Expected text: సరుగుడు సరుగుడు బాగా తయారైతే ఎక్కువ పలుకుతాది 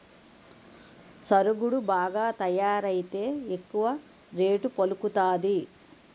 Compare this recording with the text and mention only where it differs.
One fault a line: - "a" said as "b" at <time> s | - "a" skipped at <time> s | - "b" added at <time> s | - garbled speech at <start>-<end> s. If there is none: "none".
- "సరుగుడు" skipped at 1.8 s
- "రేటు" added at 4.3 s